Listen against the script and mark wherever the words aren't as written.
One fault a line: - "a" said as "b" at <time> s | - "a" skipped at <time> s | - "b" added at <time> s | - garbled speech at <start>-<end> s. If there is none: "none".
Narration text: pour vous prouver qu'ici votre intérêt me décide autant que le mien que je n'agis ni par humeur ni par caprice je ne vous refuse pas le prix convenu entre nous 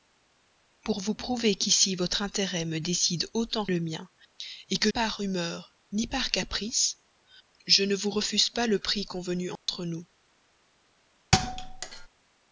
- "que" skipped at 3.7 s
- "je n'agis ni" skipped at 4.9 s